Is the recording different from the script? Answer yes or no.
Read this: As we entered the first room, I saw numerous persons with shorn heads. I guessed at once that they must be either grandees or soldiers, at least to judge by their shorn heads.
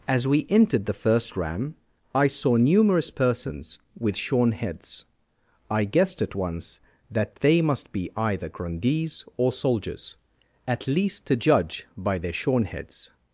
yes